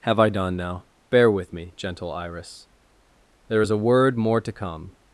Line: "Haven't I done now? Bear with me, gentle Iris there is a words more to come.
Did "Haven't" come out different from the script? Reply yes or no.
yes